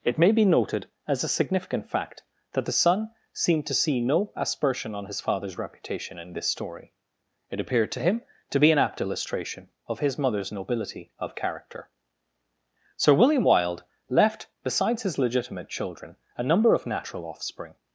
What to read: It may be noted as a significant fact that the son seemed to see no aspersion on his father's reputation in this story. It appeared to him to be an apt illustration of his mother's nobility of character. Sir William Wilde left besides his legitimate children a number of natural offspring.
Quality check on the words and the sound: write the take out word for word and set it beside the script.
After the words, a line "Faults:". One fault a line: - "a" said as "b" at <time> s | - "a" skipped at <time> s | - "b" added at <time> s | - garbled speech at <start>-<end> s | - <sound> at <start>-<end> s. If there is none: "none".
It may be noted as a significant fact that the son seemed to see no aspersion on his father's reputation in this story. It appeared to him to be an apt illustration of his mother's nobility of character. Sir William Wilde left besides his legitimate children a number of natural offspring.
Faults:
none